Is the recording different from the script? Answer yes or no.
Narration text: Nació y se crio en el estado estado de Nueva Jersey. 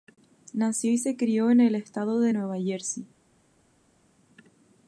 yes